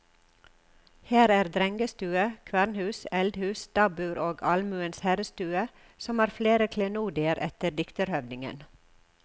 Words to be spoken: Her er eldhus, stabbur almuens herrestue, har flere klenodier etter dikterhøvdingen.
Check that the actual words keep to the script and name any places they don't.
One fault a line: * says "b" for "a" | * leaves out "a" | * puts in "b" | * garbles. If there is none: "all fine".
* puts in "drengestue kvernhus"
* puts in "og"
* puts in "som"